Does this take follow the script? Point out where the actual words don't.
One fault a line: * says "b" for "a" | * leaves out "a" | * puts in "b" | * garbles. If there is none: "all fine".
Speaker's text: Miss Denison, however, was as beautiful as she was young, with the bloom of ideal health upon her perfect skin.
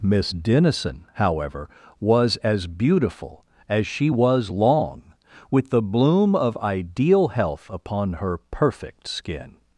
* says "long" for "young"